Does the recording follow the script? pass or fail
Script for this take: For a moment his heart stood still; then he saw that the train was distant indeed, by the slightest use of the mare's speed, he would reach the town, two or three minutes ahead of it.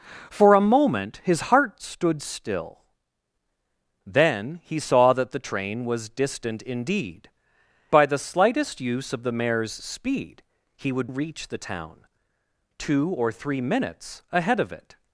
pass